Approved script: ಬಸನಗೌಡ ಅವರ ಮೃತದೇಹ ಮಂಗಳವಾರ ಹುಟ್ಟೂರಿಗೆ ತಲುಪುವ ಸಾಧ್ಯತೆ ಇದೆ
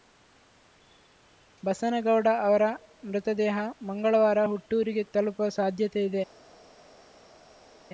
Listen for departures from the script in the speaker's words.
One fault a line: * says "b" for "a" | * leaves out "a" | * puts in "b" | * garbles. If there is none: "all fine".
all fine